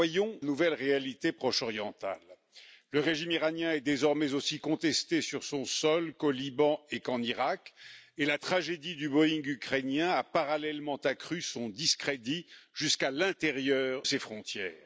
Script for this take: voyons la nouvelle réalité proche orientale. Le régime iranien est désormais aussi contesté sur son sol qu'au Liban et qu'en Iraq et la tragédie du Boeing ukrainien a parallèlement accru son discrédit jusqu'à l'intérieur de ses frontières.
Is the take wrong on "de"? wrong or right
wrong